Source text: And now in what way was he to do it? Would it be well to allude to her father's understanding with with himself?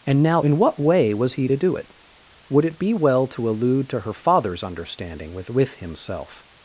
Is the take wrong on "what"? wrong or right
right